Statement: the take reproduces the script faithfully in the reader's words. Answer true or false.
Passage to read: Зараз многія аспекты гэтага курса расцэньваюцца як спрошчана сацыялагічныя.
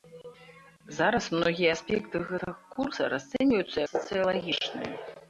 false